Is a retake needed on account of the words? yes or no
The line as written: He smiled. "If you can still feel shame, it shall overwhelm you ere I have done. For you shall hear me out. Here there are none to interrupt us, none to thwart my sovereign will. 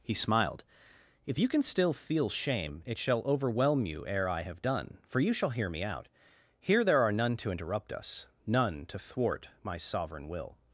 no